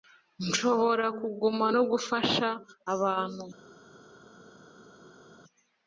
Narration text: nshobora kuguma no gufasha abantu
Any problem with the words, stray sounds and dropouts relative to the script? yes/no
no